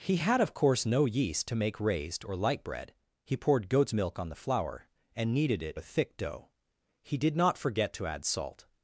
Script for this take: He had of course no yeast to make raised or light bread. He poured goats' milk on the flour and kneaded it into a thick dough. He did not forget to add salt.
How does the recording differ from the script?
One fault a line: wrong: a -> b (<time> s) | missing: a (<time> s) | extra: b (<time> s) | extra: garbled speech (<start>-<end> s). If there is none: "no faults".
missing: into (5.7 s)